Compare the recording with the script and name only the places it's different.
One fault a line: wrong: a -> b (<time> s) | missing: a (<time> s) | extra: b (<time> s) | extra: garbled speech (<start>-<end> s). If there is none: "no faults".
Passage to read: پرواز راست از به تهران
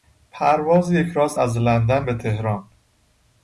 extra: یک (0.9 s)
extra: لندن (1.6 s)